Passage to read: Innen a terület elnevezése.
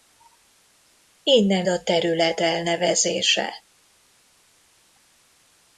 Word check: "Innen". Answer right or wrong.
right